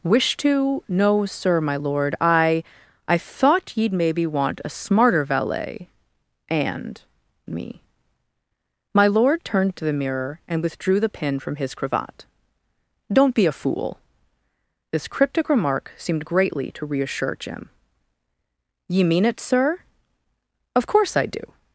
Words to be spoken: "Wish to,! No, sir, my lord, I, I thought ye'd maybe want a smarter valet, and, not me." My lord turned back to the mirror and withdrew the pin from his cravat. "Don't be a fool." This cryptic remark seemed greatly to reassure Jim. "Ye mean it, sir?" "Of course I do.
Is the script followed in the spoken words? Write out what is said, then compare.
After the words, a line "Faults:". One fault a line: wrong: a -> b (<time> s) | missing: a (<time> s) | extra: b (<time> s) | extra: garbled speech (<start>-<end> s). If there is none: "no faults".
"Wish to,! No, sir, my lord, I, I thought ye'd maybe want a smarter valet, and, me." My lord turned to the mirror and withdrew the pin from his cravat. "Don't be a fool." This cryptic remark seemed greatly to reassure Jim. "Ye mean it, sir?" "Of course I do.
Faults:
missing: not (7.0 s)
missing: back (9.7 s)